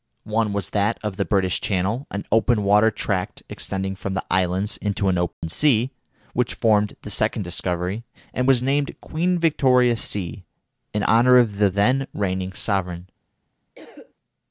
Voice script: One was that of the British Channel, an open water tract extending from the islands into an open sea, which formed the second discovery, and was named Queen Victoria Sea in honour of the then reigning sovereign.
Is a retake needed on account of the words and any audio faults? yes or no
yes